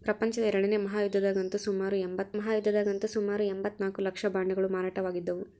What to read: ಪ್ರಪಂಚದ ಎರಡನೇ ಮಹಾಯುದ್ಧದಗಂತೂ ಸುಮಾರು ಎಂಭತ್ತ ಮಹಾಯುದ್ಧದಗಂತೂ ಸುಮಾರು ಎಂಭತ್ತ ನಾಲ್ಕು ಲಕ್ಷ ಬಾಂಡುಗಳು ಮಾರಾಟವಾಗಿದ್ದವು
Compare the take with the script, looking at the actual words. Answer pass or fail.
pass